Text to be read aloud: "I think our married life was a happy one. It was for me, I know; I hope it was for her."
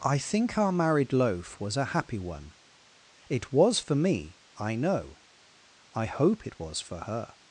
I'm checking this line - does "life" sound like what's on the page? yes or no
no